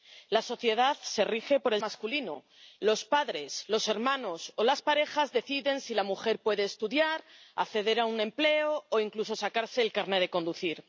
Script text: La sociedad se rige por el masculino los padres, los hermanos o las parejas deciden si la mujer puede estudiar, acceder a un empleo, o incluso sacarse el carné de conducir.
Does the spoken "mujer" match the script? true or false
true